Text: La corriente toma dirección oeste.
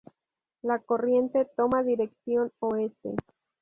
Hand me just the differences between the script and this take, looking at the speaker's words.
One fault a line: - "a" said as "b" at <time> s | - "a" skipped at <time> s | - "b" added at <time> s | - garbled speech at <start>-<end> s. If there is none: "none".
none